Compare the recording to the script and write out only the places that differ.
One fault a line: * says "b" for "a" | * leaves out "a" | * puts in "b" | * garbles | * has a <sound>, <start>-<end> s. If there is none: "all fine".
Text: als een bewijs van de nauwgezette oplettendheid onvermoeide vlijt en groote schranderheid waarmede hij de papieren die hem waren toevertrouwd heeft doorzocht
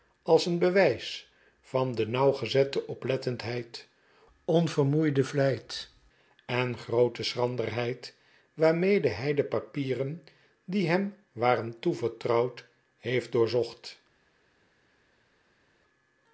all fine